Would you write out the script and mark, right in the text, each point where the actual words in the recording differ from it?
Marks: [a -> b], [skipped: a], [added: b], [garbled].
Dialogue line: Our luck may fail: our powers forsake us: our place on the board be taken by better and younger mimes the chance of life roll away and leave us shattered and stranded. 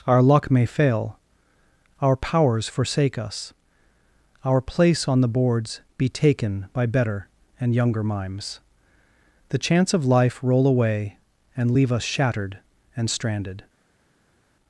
Our luck may fail: our powers forsake us: our place on the [board -> boards] be taken by better and younger mimes the chance of life roll away and leave us shattered and stranded.